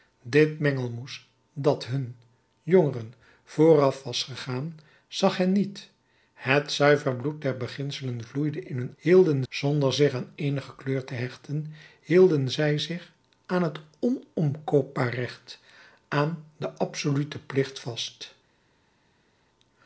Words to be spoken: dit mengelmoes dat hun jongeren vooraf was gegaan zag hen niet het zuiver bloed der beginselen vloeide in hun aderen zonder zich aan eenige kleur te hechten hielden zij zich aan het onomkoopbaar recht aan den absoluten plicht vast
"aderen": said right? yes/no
no